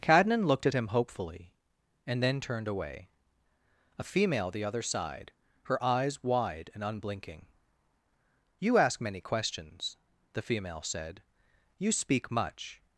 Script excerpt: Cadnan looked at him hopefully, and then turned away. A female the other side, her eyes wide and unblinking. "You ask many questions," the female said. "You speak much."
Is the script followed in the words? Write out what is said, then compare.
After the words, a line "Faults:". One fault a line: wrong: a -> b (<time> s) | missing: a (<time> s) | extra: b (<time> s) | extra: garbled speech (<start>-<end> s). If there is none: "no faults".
Cadnan looked at him hopefully, and then turned away. A female the other side, her eyes wide and unblinking. "You ask many questions," the female said. "You speak much."
Faults:
no faults